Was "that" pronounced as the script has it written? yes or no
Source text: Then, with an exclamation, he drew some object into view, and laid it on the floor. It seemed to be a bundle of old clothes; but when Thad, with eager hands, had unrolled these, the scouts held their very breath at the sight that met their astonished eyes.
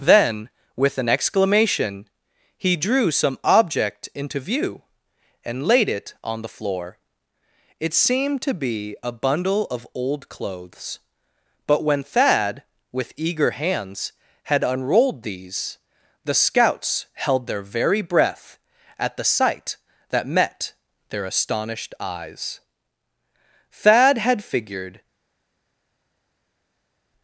yes